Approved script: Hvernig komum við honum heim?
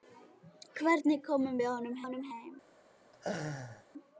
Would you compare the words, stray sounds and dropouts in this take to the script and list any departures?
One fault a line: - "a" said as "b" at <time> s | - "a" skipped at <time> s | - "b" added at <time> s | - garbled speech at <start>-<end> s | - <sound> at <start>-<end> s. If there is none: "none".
- "honum" added at 2.0 s
- laugh at 3.1-3.9 s